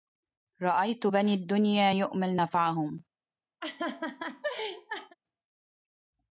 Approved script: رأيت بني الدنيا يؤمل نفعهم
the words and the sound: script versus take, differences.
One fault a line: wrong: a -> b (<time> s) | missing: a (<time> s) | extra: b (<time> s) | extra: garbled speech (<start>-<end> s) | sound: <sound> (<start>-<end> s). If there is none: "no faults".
sound: laugh (3.6-5.2 s)